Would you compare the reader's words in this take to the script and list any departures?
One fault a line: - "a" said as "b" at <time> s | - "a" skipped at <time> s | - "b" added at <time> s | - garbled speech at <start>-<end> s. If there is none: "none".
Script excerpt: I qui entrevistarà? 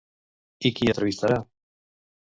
none